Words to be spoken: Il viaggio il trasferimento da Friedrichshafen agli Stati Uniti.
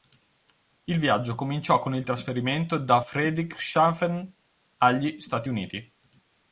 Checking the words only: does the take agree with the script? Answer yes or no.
no